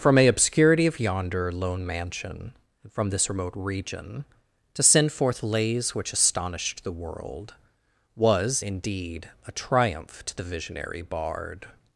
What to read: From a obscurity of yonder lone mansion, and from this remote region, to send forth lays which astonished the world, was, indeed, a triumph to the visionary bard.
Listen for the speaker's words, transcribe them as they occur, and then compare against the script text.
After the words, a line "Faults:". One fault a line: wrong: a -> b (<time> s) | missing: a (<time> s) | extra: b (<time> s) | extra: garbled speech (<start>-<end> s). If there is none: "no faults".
From a obscurity of yonder lone mansion, and from this remote region, to send forth lays which astonished the world, was, indeed, a triumph to the visionary bard.
Faults:
no faults